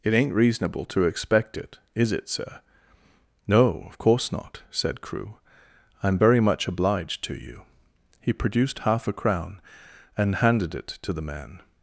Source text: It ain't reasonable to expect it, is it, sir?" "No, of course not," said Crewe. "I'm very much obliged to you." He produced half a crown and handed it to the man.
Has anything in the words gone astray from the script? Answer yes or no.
no